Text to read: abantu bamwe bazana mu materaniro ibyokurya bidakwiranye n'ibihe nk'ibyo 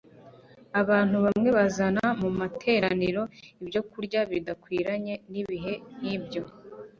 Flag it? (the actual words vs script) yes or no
no